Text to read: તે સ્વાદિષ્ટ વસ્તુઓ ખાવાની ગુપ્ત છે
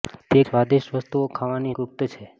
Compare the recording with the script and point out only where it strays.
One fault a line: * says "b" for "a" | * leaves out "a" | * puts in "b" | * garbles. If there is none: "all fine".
all fine